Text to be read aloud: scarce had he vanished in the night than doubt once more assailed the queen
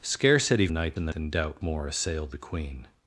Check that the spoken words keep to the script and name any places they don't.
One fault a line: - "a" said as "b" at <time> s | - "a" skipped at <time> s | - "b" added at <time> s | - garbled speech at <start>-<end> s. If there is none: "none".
- "vanished" said as "night" at 0.7 s
- "night" skipped at 1.1 s
- "once" skipped at 1.6 s